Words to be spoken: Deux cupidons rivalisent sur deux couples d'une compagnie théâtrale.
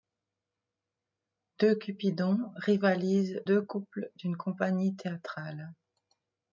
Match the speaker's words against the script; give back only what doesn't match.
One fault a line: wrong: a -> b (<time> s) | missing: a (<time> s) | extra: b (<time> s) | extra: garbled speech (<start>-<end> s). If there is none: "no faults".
missing: sur (3.4 s)